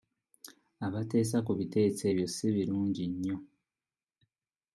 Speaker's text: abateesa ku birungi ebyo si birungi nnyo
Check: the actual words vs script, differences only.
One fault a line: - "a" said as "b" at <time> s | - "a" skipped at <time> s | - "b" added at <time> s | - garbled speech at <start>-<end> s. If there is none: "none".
- "birungi" said as "biteeso" at 1.6 s